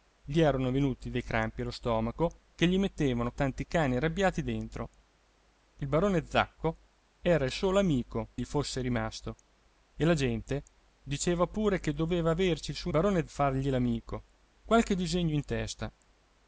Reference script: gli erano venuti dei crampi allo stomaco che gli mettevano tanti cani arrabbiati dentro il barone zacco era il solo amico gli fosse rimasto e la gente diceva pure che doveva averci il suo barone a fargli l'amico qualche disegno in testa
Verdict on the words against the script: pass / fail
pass